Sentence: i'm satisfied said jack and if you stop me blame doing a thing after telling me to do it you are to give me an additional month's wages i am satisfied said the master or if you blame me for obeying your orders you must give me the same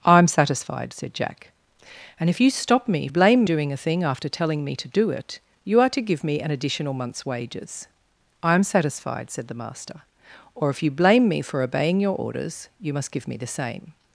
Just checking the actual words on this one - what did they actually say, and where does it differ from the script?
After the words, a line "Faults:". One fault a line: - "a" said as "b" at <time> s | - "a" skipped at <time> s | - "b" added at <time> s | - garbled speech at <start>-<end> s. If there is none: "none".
i'm satisfied said jack and if you stop me blame doing a thing after telling me to do it you are to give me an additional month's wages i am satisfied said the master or if you blame me for obeying your orders you must give me the same
Faults:
none